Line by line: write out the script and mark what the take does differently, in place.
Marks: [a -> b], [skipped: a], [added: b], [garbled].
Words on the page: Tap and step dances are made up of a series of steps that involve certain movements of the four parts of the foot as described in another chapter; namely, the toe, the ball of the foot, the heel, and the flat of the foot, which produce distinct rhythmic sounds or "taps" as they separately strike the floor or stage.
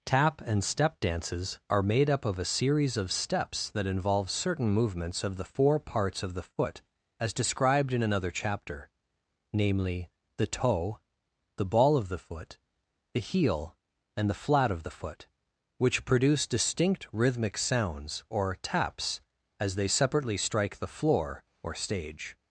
Tap and step dances are made up of a series of steps that involve certain movements of the four parts of the foot as described in another chapter; namely, the toe, the ball of the foot, the heel, and the flat of the foot, which produce distinct rhythmic sounds or "taps" as they separately strike the floor or stage.